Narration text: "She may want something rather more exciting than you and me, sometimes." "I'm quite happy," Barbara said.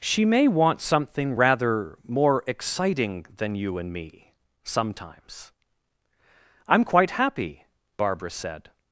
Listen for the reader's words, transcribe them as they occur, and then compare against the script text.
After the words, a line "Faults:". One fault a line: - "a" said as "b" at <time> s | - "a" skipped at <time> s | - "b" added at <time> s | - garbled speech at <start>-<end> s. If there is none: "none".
"She may want something rather more exciting than you and me, sometimes." "I'm quite happy," Barbara said.
Faults:
none